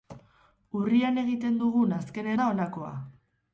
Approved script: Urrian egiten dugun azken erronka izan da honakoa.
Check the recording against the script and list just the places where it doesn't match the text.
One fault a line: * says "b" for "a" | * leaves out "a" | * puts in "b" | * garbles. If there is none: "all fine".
* leaves out "erronka izan"